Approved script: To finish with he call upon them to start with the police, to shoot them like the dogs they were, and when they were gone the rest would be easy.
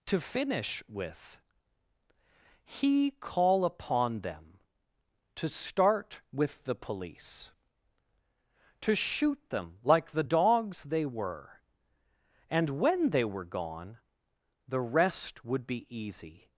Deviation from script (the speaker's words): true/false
false